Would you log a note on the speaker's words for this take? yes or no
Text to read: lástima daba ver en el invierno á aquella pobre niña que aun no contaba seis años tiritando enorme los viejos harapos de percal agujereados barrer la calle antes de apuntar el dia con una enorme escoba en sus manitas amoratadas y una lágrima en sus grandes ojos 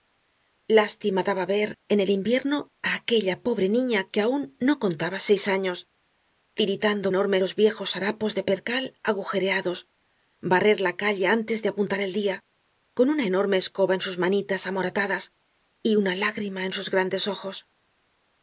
no